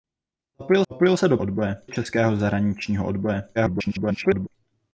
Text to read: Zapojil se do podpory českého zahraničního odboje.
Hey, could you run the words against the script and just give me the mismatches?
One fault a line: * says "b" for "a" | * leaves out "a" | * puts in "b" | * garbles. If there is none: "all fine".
* puts in "zapojil"
* says "odboje" for "podpory"
* garbles